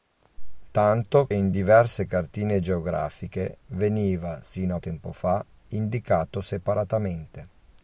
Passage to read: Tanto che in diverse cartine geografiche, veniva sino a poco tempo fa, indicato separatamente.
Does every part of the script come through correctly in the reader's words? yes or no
no